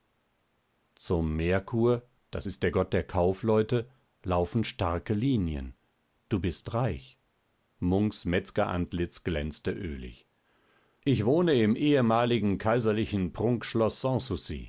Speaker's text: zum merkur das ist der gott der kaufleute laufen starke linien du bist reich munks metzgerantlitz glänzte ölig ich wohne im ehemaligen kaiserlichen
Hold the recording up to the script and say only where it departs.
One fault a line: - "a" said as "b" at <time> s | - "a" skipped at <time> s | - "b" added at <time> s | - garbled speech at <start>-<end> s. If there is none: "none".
none